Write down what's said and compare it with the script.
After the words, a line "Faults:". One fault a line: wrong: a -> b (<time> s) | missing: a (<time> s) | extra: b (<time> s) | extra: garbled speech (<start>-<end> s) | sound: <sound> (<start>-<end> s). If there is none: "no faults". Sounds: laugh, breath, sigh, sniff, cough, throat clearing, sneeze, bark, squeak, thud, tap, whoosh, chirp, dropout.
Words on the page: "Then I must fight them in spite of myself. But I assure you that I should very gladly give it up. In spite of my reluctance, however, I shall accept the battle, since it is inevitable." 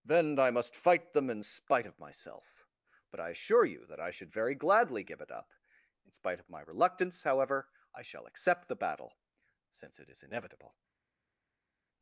"Then I must fight them in spite of myself. But I assure you that I should very gladly give it up. In spite of my reluctance, however, I shall accept the battle, since it is inevitable."
Faults:
no faults